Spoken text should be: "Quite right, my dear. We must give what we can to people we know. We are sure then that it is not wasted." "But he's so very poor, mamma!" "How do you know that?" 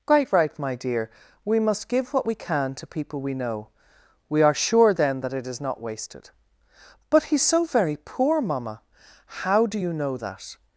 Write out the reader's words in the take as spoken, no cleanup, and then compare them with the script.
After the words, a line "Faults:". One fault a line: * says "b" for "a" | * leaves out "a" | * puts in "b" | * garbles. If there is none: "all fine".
"Quite right, my dear. We must give what we can to people we know. We are sure then that it is not wasted." "But he's so very poor, mamma!" "How do you know that?"
Faults:
all fine